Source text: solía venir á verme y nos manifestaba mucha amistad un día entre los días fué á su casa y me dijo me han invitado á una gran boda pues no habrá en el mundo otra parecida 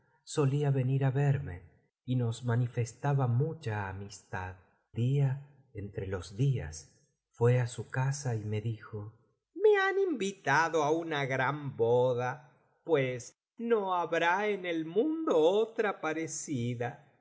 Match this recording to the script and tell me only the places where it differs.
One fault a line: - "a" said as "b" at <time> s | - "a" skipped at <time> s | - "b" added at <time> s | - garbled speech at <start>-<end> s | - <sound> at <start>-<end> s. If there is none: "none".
- "un" skipped at 4.5 s